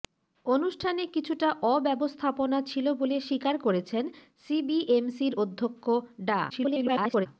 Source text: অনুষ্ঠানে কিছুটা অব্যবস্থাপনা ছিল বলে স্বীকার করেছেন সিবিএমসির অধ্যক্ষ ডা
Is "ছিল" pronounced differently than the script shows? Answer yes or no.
no